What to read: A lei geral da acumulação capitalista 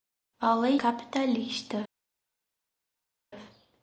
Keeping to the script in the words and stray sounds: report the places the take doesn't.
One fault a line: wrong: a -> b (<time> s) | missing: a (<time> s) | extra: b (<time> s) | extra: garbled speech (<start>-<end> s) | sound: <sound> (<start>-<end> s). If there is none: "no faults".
missing: geral da acumulação (0.8 s)